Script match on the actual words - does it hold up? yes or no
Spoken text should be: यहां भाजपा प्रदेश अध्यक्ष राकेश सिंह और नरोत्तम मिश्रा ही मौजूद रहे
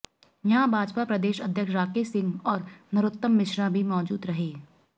no